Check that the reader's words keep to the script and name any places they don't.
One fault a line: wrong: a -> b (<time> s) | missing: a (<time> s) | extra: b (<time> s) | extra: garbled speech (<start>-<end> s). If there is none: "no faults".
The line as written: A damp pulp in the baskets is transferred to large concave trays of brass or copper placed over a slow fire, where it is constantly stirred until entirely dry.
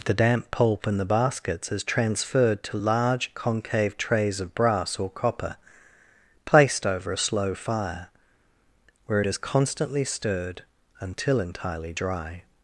wrong: A -> The (0.0 s)